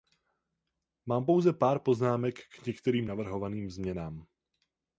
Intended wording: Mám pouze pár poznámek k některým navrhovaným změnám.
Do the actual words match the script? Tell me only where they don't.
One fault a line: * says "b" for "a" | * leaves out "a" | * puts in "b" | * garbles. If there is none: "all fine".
all fine